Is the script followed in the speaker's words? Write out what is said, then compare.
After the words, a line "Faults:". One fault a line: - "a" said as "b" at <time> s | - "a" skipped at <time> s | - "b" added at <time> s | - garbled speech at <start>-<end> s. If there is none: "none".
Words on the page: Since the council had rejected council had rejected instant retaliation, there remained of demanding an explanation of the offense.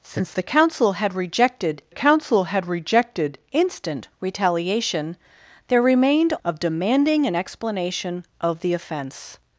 Since the council had rejected council had rejected instant retaliation, there remained of demanding an explanation of the offense.
Faults:
none